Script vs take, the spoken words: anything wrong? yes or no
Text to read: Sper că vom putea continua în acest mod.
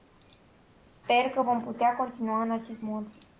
no